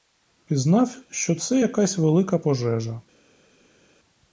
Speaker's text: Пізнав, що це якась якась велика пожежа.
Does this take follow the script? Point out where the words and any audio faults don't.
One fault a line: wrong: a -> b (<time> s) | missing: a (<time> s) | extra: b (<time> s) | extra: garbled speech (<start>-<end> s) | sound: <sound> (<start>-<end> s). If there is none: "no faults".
missing: якась (2.0 s)